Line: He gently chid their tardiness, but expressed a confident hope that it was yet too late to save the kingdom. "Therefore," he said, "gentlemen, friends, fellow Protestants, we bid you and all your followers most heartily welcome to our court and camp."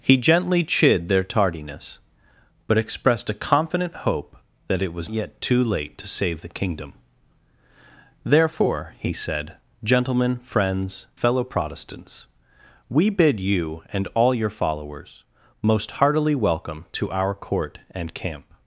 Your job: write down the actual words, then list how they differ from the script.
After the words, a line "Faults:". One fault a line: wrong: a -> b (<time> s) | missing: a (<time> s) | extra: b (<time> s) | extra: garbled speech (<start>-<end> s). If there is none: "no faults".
He gently chid their tardiness, but expressed a confident hope that it was yet too late to save the kingdom. "Therefore," he said, "gentlemen, friends, fellow Protestants, we bid you and all your followers most heartily welcome to our court and camp."
Faults:
no faults